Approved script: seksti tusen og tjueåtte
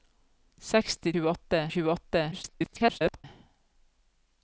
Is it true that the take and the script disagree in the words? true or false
true